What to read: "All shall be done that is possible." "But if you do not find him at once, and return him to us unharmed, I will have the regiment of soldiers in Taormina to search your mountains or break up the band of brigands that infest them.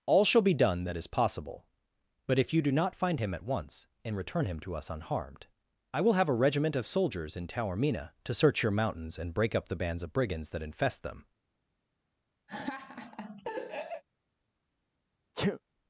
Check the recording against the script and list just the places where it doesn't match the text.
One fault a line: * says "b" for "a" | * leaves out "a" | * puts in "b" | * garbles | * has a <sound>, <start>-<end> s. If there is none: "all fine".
* says "a" for "the"
* says "and" for "or"
* says "bands" for "band"
* has a laugh, 12.5-14.0 s
* has a sneeze, 15.3-15.6 s